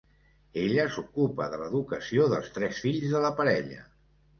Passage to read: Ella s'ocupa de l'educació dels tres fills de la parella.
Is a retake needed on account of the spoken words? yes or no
no